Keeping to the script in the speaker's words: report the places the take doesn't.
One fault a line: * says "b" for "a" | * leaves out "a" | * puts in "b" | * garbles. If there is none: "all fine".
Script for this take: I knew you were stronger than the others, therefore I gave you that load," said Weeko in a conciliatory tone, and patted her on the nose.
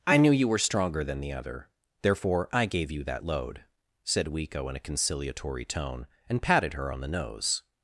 * says "other" for "others"